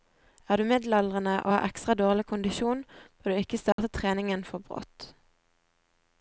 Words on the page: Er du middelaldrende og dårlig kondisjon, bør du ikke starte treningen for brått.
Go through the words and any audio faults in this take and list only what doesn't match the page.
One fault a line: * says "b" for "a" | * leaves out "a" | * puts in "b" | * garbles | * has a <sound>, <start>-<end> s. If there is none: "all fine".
* puts in "har ekstra"
* has a dropout, 3.7-3.8 s